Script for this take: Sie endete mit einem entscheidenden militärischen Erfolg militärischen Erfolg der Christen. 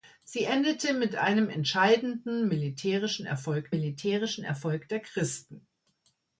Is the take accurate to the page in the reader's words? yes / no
yes